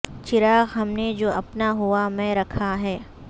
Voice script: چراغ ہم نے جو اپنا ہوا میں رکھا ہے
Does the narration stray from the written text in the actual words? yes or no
no